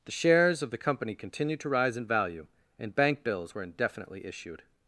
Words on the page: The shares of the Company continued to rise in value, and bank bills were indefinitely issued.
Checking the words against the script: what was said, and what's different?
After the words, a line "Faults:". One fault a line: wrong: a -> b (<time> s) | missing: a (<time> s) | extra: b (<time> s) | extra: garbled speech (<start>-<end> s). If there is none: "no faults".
The shares of the Company continued to rise in value, and bank bills were indefinitely issued.
Faults:
no faults